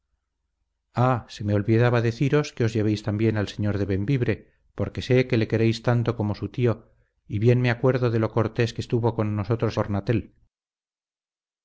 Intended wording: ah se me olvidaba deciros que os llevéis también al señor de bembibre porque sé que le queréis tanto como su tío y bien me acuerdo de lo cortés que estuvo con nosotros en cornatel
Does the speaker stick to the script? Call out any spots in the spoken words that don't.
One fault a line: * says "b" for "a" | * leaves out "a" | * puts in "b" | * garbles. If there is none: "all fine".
* leaves out "en"